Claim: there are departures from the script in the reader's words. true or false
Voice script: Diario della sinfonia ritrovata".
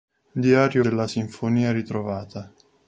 false